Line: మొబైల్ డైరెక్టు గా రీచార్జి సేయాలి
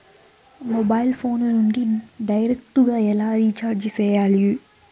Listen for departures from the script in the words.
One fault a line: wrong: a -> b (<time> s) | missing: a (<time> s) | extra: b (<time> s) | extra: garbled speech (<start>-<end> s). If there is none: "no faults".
extra: ఫోను నుండి (1.1 s)
extra: ఎలా (3.1 s)